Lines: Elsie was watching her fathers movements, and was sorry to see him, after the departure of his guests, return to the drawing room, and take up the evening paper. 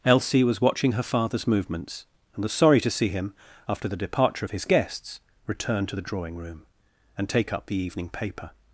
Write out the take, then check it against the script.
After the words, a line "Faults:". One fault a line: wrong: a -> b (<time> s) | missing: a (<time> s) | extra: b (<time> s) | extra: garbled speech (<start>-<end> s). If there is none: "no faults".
Elsie was watching her fathers movements, and was sorry to see him, after the departure of his guests, return to the drawing room, and take up the evening paper.
Faults:
no faults